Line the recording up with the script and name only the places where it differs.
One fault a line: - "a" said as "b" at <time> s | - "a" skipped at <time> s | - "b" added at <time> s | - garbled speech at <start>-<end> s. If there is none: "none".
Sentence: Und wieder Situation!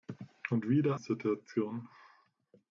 none